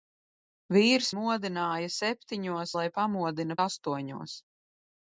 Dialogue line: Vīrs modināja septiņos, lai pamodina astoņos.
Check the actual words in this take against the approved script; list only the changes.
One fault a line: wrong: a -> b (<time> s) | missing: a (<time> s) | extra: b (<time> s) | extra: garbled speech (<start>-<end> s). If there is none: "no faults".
no faults